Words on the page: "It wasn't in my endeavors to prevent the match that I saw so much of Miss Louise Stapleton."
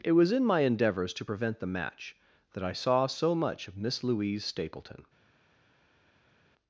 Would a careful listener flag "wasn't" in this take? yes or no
yes